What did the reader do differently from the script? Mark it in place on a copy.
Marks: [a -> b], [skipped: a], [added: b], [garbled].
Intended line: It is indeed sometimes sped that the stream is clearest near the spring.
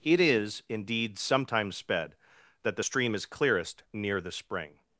It is indeed sometimes sped that the stream is clearest near the spring.